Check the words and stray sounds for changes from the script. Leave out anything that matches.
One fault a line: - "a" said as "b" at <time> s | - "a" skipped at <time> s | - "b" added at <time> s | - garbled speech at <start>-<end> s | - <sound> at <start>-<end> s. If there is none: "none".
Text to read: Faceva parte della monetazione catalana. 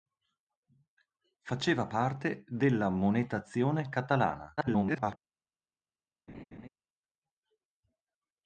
- garbled speech at 4.6-5.2 s
- laugh at 6.3-6.7 s